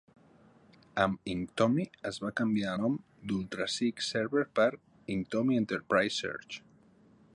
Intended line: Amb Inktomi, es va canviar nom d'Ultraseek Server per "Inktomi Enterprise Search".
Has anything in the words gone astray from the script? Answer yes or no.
no